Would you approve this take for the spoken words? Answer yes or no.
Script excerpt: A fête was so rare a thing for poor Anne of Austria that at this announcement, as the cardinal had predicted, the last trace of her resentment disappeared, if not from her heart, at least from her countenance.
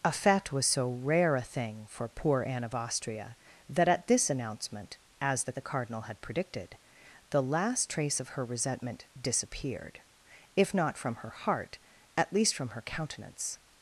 no